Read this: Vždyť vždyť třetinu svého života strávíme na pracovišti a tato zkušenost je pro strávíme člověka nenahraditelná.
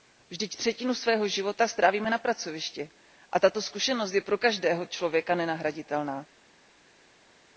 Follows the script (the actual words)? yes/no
no